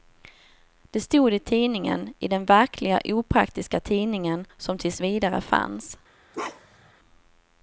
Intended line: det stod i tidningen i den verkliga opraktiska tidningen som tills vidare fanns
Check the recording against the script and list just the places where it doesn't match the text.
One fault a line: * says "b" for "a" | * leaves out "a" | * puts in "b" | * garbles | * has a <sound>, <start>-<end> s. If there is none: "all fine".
* has a bark, 6.3-6.9 s